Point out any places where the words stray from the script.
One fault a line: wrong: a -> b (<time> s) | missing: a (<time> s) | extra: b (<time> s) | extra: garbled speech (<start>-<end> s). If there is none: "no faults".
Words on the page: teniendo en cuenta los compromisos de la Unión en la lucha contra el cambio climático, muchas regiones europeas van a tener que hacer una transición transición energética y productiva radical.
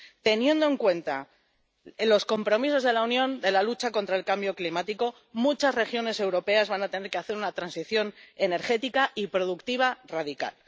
missing: transición (8.1 s)